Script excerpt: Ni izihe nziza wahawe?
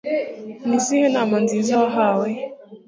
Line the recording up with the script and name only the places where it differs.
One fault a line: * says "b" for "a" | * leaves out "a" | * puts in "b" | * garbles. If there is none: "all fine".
* puts in "nama"